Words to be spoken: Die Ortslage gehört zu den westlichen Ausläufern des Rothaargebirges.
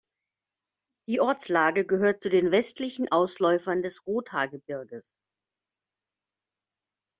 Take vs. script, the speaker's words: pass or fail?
pass